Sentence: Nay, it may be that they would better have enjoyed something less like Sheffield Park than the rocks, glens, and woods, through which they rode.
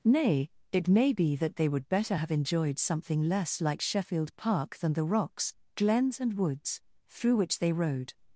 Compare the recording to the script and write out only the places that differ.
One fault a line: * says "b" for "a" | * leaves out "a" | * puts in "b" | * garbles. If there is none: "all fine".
all fine